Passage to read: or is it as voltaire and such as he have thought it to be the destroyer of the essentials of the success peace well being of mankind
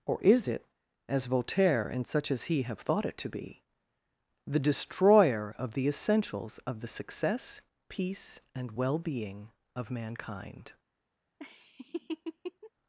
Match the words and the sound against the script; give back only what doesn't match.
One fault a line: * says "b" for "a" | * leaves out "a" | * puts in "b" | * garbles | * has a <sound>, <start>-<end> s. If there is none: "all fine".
* puts in "and"
* has a laugh, 11.4-12.7 s